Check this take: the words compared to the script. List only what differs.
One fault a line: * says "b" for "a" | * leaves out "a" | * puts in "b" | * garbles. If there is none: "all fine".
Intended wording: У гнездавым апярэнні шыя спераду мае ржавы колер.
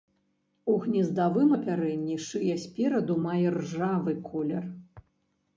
all fine